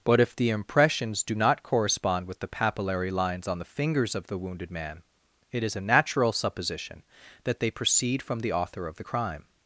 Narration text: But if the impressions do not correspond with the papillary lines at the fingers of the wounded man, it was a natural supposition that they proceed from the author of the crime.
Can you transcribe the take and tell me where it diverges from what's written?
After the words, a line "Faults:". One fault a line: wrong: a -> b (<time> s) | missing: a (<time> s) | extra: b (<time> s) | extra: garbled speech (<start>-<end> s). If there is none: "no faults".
But if the impressions do not correspond with the papillary lines on the fingers of the wounded man, it is a natural supposition that they proceed from the author of the crime.
Faults:
wrong: at -> on (3.5 s)
wrong: was -> is (5.6 s)